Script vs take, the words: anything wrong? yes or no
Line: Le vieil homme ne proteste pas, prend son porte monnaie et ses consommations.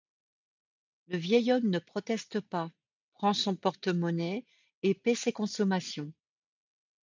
yes